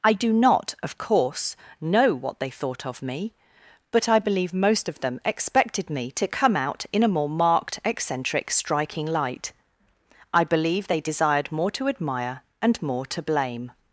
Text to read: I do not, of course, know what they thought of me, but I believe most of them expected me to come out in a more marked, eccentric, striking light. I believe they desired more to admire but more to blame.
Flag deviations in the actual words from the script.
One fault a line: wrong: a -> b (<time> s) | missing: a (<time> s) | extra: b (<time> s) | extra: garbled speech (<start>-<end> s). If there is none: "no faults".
wrong: but -> and (12.6 s)